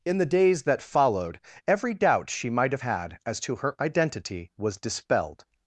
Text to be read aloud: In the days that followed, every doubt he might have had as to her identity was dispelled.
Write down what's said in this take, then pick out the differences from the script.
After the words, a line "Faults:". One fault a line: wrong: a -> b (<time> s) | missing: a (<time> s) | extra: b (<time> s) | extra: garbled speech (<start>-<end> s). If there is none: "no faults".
In the days that followed, every doubt she might have had as to her identity was dispelled.
Faults:
wrong: he -> she (2.3 s)